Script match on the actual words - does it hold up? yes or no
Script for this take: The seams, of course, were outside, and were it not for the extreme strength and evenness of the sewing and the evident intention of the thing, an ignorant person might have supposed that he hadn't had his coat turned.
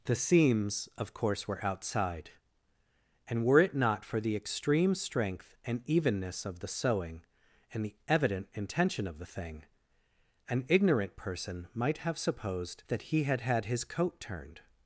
no